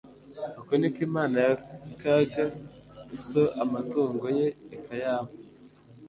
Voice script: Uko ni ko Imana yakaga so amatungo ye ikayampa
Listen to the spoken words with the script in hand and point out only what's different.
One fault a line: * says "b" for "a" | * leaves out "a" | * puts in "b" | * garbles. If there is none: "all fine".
all fine